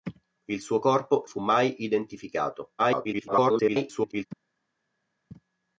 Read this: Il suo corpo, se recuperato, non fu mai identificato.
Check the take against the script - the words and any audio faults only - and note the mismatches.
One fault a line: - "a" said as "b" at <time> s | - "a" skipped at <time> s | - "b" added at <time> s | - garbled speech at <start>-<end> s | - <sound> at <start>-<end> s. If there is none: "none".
- "se recuperato non" skipped at 1.2 s
- garbled speech at 2.8-4.3 s